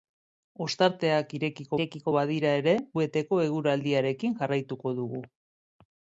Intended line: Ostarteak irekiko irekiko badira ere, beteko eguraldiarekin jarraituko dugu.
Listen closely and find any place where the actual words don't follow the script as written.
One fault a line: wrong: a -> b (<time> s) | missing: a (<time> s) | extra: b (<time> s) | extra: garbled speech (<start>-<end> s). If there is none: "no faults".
no faults